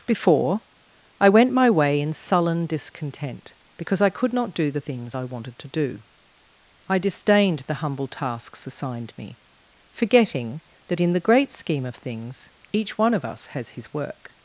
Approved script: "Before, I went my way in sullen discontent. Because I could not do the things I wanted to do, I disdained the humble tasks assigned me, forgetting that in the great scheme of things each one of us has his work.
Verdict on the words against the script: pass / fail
pass